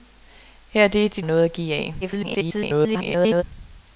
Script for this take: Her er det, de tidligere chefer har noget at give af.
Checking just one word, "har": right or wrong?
wrong